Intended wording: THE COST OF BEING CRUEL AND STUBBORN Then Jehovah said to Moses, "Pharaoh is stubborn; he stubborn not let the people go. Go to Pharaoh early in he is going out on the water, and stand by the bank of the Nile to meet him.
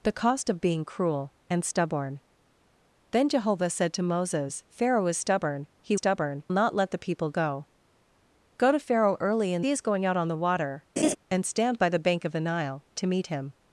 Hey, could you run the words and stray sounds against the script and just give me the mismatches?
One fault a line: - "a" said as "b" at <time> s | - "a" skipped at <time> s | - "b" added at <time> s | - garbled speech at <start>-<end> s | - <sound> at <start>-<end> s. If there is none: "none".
- laugh at 11.0-11.2 s